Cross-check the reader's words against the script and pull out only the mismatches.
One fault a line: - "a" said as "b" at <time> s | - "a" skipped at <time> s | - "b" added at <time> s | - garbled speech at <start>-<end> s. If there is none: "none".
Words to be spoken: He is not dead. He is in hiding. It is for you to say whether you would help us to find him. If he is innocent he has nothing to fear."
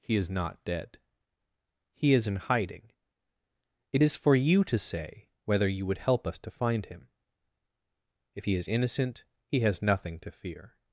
none